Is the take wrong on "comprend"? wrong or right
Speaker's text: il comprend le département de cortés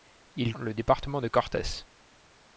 wrong